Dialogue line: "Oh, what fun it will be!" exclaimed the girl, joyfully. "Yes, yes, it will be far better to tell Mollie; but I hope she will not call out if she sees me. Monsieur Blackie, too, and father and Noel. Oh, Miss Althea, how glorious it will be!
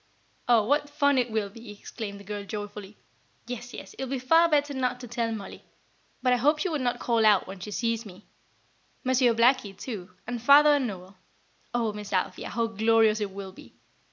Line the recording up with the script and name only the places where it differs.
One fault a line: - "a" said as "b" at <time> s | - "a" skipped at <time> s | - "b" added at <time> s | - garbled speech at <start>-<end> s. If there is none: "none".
- "not" added at 4.7 s
- "if" said as "when" at 7.5 s